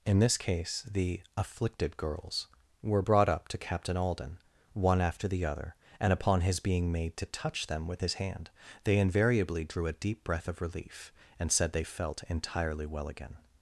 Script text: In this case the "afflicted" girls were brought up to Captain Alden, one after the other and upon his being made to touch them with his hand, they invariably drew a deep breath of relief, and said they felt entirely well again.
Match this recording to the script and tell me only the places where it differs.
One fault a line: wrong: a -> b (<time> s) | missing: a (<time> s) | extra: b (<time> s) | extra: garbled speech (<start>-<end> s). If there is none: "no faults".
no faults